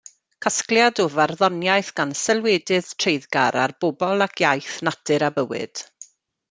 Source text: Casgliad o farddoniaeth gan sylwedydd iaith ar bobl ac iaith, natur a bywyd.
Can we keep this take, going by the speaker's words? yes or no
no